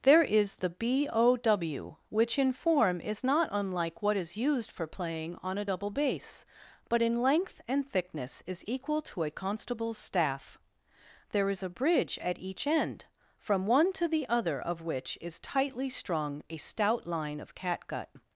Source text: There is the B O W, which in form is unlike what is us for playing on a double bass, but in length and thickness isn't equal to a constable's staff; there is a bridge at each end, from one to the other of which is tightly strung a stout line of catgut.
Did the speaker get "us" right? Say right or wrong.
wrong